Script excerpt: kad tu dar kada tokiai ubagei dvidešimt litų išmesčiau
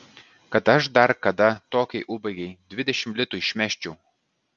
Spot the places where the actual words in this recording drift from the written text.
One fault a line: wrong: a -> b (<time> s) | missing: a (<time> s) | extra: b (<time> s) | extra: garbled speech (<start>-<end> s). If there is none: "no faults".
wrong: tu -> aš (0.8 s)